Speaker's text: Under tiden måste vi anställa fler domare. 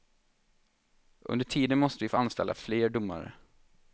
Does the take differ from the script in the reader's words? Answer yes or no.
yes